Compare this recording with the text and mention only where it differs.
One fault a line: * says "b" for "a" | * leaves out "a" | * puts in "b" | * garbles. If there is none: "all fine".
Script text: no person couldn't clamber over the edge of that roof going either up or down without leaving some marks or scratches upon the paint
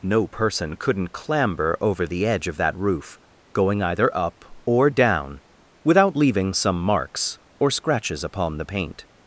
all fine